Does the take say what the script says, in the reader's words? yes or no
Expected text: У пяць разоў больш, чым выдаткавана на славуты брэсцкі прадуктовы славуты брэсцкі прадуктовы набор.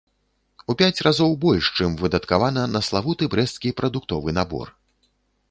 no